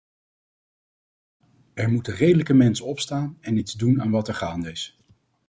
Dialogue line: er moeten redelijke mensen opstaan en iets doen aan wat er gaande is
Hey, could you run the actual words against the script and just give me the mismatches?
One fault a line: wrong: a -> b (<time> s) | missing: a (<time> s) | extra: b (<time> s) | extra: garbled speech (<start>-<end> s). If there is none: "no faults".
no faults